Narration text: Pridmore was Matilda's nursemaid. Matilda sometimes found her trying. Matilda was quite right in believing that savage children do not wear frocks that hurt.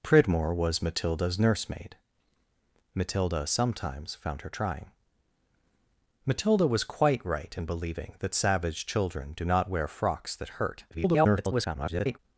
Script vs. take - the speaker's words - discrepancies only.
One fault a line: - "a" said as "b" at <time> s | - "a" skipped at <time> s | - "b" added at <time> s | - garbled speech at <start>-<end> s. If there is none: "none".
- garbled speech at 10.9-12.2 s